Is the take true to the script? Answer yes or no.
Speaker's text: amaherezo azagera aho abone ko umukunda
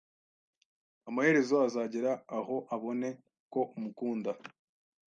yes